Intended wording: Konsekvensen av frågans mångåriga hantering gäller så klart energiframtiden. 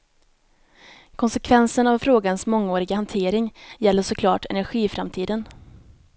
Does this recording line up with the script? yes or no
yes